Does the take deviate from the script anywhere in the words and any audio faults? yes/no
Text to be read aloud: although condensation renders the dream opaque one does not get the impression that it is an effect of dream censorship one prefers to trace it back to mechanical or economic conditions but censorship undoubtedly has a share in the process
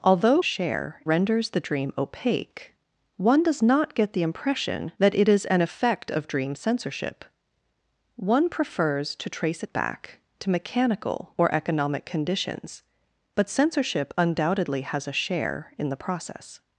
yes